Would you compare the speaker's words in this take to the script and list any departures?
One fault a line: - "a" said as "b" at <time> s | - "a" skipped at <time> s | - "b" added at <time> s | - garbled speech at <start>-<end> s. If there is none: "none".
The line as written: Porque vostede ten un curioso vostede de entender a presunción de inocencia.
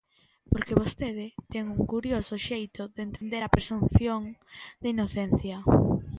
- "vostede" said as "xeito" at 2.5 s